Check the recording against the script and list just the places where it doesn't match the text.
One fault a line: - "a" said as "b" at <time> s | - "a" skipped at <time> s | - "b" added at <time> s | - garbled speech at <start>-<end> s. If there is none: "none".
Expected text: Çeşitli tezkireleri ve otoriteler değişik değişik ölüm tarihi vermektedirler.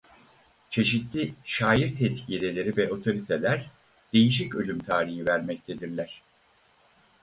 - "şair" added at 1.4 s
- "değişik" skipped at 4.5 s